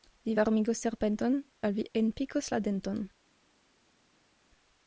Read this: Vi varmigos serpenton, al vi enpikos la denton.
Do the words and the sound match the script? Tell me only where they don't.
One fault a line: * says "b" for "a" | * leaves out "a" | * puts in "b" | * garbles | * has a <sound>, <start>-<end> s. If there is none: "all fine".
all fine